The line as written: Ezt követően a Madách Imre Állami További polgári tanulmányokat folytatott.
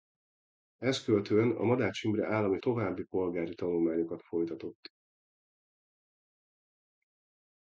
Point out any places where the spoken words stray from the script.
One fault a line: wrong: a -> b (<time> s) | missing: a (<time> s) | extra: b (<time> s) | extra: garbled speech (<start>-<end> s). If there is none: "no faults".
no faults